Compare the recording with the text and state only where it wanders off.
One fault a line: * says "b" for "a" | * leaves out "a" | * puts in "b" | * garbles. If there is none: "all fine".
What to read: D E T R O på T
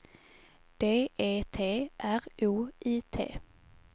* says "I" for "på"